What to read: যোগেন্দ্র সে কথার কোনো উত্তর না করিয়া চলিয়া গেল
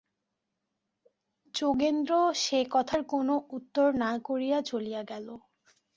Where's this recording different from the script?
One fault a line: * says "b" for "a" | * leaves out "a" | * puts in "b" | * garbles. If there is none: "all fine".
all fine